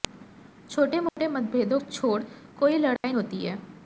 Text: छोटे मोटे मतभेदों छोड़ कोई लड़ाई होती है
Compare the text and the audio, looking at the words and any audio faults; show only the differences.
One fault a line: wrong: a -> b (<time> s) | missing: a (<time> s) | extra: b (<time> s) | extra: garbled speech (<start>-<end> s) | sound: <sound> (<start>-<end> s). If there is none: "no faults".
sound: dropout (1.1-1.2 s)
sound: dropout (3.0-3.0 s)